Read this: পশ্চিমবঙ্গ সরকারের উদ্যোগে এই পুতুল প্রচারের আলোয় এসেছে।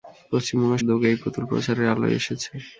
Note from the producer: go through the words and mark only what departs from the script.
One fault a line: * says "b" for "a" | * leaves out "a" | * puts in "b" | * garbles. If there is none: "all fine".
* leaves out "সরকারের"